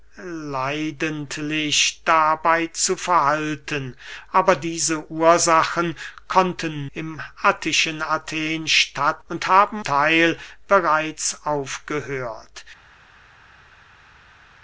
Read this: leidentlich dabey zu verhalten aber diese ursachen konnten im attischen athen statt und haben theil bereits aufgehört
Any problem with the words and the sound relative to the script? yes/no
no